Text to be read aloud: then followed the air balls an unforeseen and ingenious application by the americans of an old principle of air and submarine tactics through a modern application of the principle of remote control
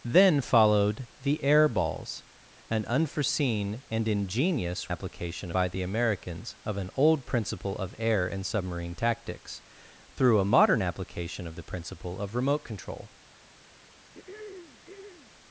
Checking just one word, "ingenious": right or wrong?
right